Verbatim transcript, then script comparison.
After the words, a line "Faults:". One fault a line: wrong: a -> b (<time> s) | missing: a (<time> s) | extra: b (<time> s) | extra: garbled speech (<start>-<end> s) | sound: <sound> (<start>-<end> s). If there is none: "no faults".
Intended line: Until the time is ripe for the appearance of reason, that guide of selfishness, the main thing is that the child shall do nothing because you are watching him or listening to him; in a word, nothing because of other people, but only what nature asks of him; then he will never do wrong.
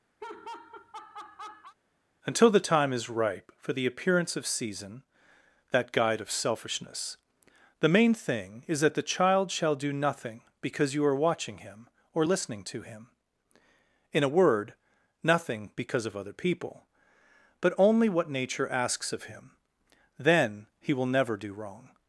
Until the time is ripe for the appearance of season, that guide of selfishness, the main thing is that the child shall do nothing because you are watching him or listening to him; in a word, nothing because of other people, but only what nature asks of him; then he will never do wrong.
Faults:
sound: laugh (0.2-1.7 s)
wrong: reason -> season (4.5 s)